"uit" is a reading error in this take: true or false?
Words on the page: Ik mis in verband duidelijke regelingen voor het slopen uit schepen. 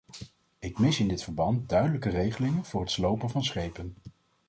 true